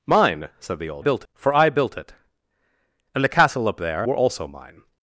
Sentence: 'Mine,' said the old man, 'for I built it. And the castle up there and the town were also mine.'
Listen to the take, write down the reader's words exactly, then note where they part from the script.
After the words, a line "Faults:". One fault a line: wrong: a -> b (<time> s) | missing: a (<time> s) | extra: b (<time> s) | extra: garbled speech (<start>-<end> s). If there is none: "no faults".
'Mine,' said the old built, 'for I built it. And the castle up there were also mine.'
Faults:
wrong: man -> built (1.0 s)
missing: and the town (4.1 s)